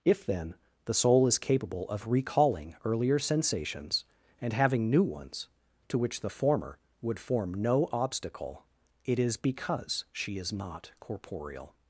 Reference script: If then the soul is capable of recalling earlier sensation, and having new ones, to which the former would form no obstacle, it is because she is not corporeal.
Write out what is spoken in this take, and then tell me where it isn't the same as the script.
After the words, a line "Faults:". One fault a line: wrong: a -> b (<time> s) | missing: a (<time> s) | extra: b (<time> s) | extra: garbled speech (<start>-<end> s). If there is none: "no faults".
If then the soul is capable of recalling earlier sensations, and having new ones, to which the former would form no obstacle, it is because she is not corporeal.
Faults:
wrong: sensation -> sensations (3.2 s)